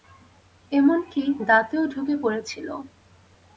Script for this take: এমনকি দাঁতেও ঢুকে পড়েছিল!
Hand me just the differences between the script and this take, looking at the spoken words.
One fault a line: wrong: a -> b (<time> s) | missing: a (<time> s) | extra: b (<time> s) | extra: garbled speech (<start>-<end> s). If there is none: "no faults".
no faults